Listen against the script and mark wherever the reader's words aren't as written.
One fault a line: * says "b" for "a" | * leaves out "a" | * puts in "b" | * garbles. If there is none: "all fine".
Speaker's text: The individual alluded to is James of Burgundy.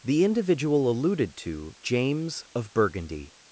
* leaves out "is"